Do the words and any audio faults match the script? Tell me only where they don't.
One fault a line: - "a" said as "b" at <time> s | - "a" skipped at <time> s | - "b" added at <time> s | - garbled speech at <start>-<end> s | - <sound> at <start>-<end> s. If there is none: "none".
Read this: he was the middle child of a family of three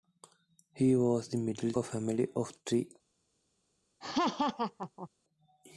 - "child of" skipped at 1.7 s
- laugh at 4.0-5.1 s